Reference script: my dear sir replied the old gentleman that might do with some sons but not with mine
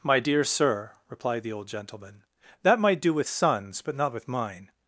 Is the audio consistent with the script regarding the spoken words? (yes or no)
no